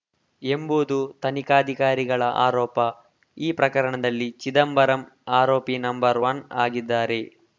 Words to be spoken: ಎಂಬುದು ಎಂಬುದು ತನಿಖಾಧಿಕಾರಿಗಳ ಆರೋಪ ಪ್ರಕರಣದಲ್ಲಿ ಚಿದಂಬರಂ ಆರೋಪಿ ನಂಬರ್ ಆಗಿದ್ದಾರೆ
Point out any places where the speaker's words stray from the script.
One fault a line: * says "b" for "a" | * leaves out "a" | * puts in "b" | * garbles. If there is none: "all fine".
* leaves out "ಎಂಬುದು"
* puts in "ಈ"
* puts in "ಒನ್"